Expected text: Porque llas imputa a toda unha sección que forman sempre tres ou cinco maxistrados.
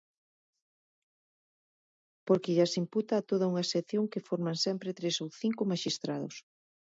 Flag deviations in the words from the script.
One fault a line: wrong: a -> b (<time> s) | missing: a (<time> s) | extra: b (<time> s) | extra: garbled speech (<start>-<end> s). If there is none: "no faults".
no faults